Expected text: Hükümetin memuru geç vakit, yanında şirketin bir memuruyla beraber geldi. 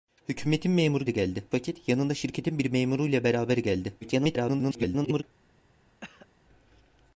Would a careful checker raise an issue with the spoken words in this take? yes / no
yes